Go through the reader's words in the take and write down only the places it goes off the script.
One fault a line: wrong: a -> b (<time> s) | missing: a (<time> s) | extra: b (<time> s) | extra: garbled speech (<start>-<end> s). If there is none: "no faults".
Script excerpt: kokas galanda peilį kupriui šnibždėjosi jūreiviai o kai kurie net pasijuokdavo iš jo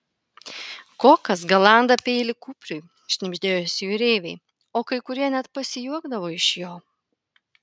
no faults